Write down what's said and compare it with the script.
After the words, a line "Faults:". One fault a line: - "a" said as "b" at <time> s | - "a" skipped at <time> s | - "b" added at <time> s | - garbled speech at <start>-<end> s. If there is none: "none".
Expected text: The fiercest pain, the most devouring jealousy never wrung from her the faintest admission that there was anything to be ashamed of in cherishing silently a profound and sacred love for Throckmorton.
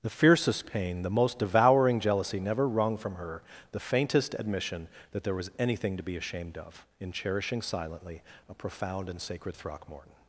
The fiercest pain, the most devouring jealousy never wrung from her the faintest admission that there was anything to be ashamed of in cherishing silently a profound and sacred Throckmorton.
Faults:
- "love for" skipped at 9.6 s